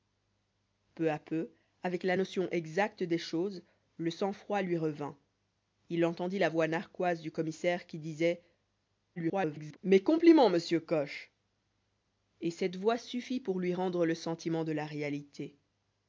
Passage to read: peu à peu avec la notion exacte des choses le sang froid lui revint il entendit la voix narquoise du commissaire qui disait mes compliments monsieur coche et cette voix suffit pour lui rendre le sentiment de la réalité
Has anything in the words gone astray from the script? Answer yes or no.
yes